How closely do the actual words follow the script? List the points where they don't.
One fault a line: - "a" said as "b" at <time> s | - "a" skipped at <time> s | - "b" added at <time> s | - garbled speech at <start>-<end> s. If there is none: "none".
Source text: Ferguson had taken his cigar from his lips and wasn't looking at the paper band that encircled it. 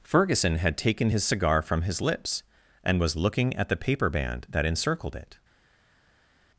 - "wasn't" said as "was" at 3.0 s